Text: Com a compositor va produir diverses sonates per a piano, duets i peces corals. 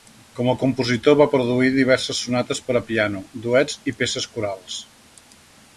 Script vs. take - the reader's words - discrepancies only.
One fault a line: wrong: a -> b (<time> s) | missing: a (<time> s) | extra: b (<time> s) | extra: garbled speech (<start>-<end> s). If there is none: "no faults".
no faults